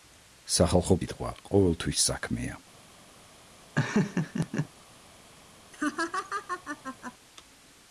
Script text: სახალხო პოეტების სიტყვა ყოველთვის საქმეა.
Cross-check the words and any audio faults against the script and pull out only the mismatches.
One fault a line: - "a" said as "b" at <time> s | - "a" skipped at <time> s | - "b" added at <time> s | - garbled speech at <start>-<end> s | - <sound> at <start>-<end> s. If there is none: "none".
- "პოეტების" skipped at 1.0 s
- laugh at 3.7-4.7 s
- laugh at 5.7-7.1 s